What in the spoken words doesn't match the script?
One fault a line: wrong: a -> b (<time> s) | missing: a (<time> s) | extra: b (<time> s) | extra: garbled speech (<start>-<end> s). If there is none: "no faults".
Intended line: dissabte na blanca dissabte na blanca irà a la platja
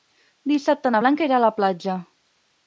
missing: dissabte na blanca (1.3 s)